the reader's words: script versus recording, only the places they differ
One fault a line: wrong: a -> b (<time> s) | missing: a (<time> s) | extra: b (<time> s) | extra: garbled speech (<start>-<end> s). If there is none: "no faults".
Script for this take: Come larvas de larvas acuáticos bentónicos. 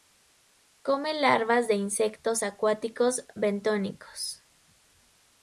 wrong: larvas -> insectos (1.8 s)